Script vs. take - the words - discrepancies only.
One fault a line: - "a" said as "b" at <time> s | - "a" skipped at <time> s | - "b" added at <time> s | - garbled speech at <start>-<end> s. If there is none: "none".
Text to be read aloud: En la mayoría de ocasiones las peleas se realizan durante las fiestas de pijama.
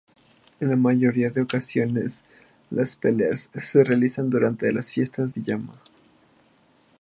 - "de" skipped at 5.3 s